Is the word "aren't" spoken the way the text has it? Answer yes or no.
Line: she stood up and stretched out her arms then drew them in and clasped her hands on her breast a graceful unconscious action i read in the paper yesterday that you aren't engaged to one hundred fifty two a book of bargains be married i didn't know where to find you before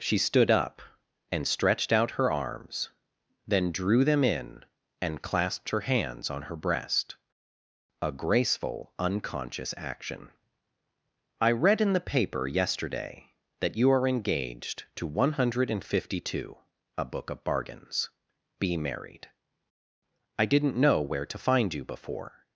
no